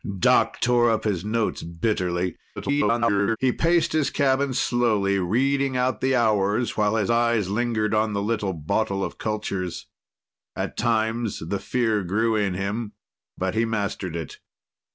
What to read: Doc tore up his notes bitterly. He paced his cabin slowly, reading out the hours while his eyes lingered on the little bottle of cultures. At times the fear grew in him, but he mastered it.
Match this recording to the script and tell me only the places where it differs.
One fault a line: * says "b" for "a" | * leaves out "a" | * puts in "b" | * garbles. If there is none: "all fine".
* garbles